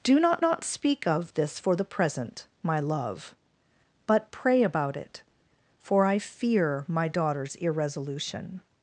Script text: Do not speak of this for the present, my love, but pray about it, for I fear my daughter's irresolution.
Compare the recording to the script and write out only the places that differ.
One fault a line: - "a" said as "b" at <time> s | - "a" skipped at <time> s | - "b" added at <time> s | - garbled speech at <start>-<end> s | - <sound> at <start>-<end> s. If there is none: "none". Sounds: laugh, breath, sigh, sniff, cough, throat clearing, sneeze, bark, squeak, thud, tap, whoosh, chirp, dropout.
- "not" added at 0.4 s